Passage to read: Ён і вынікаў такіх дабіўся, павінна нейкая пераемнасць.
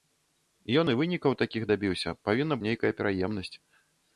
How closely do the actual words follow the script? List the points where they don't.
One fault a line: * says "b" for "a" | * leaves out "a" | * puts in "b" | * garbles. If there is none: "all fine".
all fine